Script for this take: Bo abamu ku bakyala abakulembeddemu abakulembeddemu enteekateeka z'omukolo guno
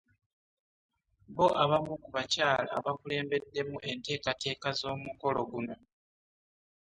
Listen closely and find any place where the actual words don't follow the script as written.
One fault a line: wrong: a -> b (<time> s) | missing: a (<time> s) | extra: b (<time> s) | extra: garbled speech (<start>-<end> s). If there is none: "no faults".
missing: abakulembeddemu (3.8 s)